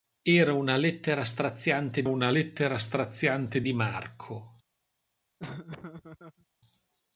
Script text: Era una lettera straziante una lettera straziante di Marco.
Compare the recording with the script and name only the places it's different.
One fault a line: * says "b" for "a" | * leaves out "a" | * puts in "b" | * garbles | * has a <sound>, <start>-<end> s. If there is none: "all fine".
* has a laugh, 5.4-6.5 s